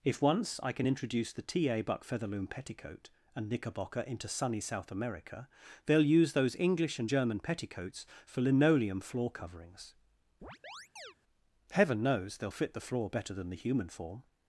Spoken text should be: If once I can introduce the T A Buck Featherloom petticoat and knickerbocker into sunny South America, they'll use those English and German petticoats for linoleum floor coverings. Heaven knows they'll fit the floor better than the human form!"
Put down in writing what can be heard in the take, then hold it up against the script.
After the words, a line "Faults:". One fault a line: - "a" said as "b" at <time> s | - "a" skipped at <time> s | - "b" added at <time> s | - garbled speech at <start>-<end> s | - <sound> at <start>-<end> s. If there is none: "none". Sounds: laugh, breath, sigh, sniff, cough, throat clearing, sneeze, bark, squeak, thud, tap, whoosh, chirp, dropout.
If once I can introduce the T A Buck Featherloom petticoat and knickerbocker into sunny South America, they'll use those English and German petticoats for linoleum floor coverings. Heaven knows they'll fit the floor better than the human form!"
Faults:
- chirp at 10.4-11.2 s